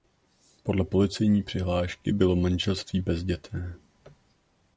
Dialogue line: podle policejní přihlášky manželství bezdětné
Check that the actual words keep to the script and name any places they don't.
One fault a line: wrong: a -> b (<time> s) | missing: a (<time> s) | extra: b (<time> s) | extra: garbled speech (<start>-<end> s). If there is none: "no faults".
extra: bylo (2.1 s)